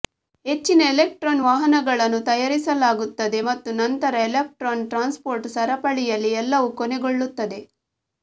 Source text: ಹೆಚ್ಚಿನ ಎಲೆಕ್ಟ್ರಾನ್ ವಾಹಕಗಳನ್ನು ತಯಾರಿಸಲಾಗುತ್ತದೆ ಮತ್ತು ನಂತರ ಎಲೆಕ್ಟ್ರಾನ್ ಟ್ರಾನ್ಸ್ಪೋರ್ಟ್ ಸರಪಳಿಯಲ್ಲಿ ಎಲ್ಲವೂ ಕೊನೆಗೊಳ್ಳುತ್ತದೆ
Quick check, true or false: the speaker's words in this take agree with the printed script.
true